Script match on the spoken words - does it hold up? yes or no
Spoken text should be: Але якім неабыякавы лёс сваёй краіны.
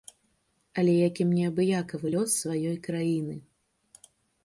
yes